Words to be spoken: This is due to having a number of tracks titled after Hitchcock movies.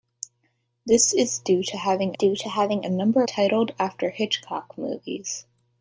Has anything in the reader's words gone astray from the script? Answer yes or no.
yes